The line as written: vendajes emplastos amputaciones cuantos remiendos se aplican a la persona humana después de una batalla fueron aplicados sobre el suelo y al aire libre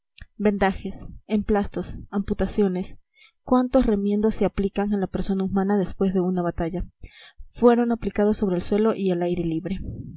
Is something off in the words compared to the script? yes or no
no